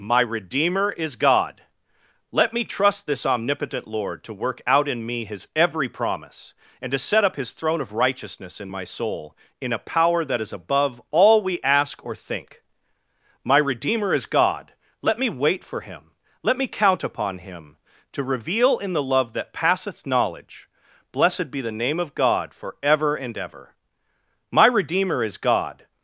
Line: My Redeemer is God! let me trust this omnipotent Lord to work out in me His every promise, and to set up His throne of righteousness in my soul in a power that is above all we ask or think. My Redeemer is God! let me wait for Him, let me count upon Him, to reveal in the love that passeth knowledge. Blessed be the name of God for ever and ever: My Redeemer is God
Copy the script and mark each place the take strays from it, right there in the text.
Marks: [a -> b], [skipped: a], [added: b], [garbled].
My Redeemer is God! let me trust this omnipotent Lord to work out in me His every promise, and to set up His throne of righteousness in my soul in a power that is above all we ask or think. My Redeemer is God! let me wait for Him, let me count upon Him, to reveal in the love that passeth knowledge. Blessed be the name of God for ever and ever: My Redeemer is God